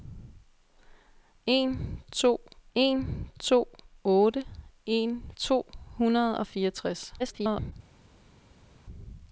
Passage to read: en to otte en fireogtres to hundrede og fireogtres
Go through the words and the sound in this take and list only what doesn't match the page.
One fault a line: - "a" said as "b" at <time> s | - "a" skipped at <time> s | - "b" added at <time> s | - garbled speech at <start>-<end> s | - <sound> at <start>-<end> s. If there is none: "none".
- "en to" added at 2.7 s
- "fireogtres" skipped at 5.3 s
- garbled speech at 7.2-7.7 s